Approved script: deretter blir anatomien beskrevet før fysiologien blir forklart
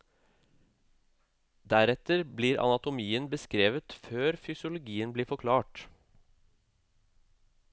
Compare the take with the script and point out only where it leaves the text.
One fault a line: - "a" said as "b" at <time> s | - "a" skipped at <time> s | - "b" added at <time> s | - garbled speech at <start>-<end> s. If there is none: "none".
none